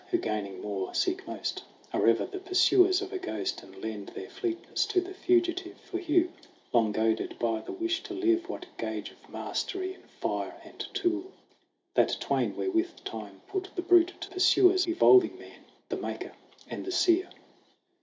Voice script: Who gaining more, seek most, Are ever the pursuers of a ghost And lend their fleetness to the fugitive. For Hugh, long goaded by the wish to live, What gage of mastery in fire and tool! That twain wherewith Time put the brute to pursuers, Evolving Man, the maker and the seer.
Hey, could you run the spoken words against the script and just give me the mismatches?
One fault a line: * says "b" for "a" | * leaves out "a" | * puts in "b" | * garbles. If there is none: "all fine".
all fine